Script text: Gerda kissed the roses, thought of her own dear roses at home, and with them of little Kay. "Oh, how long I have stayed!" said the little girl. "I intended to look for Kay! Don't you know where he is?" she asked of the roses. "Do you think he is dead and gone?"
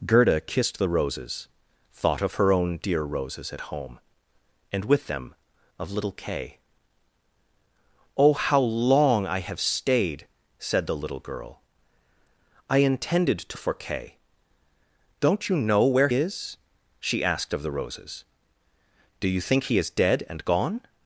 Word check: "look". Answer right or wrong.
wrong